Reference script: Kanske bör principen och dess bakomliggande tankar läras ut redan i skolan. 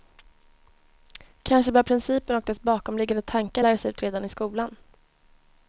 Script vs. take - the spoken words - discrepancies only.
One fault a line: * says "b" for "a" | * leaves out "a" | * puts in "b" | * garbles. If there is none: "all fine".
all fine